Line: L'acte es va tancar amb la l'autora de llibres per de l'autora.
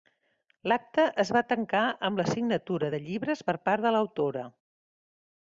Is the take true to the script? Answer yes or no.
no